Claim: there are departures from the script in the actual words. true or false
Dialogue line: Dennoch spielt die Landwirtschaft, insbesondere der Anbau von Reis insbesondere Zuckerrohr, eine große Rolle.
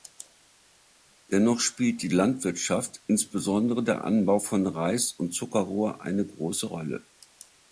true